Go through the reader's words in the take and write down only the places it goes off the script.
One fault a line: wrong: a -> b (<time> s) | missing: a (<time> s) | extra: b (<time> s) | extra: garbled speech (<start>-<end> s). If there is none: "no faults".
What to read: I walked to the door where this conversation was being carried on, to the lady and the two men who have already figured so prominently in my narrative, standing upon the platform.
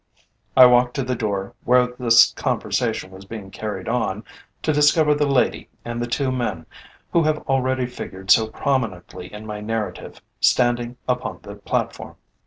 extra: discover (4.7 s)